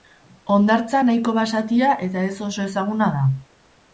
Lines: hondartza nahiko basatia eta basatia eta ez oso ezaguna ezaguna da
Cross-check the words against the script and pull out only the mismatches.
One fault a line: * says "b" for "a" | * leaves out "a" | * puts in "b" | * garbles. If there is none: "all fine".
* leaves out "basatia eta"
* leaves out "ezaguna"